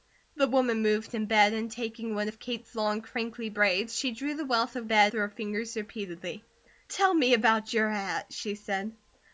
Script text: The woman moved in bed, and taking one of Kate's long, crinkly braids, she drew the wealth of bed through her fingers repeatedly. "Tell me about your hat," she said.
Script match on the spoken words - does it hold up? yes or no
yes